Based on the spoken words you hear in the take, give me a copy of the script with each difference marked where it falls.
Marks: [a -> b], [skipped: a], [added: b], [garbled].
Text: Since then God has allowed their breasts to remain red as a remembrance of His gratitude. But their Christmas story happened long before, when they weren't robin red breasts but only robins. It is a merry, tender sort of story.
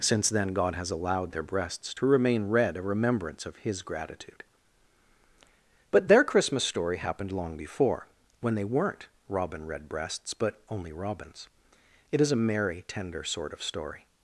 Since then God has allowed their breasts to remain red [skipped: as] a remembrance of His gratitude. But their Christmas story happened long before, when they weren't robin red breasts but only robins. It is a merry, tender sort of story.